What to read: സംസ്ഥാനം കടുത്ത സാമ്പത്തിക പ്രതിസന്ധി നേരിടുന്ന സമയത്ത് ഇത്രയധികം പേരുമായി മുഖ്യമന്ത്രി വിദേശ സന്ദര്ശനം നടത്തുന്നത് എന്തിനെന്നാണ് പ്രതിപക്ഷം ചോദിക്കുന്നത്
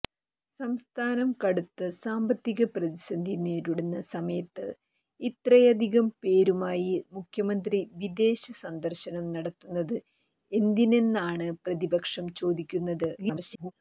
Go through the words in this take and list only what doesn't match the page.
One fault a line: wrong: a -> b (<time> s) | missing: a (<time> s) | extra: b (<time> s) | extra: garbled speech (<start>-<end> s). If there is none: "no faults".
extra: garbled speech (13.2-13.7 s)